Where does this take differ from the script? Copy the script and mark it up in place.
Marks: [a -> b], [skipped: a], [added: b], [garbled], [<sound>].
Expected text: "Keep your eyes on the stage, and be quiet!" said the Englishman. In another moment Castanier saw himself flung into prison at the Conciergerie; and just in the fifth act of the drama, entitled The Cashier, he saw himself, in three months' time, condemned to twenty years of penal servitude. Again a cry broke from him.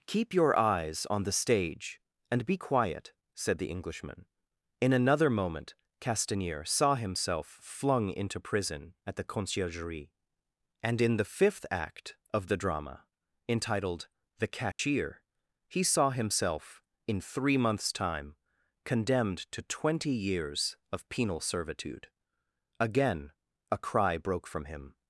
"Keep your eyes on the stage, and be quiet!" said the Englishman. In another moment Castanier saw himself flung into prison at the Conciergerie; and [skipped: just] in the fifth act of the drama, entitled The Cashier, [dropout] he saw himself, in three months' time, condemned to twenty years of penal servitude. Again a cry broke from him.